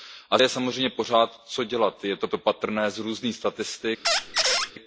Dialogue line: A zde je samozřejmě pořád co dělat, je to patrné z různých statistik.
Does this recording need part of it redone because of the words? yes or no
yes